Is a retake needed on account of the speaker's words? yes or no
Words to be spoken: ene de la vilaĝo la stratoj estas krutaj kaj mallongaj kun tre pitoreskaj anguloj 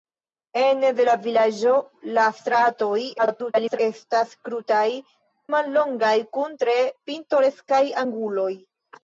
yes